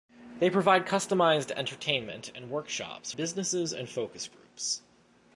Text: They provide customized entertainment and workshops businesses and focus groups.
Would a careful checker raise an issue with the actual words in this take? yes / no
no